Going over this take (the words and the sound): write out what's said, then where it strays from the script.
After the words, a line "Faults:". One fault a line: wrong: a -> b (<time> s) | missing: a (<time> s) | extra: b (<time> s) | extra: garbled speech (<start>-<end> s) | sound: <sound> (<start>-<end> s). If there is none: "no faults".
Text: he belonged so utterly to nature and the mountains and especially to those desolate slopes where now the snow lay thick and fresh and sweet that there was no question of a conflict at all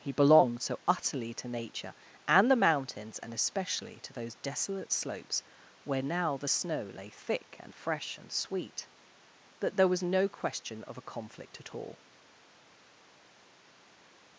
he belonged so utterly to nature and the mountains and especially to those desolate slopes where now the snow lay thick and fresh and sweet that there was no question of a conflict at all
Faults:
no faults